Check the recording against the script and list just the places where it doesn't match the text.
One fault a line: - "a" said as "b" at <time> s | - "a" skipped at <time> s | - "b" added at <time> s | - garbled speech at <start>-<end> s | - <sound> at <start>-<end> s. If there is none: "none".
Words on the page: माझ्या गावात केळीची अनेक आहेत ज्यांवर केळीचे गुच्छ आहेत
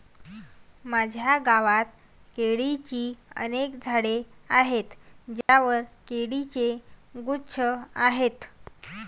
- "झाडे" added at 3.8 s
- dropout at 5.4-5.5 s